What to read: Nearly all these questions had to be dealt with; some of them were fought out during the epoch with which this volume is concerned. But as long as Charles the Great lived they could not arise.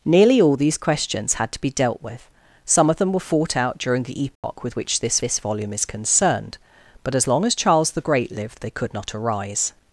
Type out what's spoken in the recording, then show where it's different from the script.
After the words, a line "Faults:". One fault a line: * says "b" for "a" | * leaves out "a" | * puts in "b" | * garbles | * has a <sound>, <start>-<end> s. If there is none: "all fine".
Nearly all these questions had to be dealt with; some of them were fought out during the epoch with which this this volume is concerned. But as long as Charles the Great lived they could not arise.
Faults:
* has a dropout, 4.4-4.4 s
* puts in "this"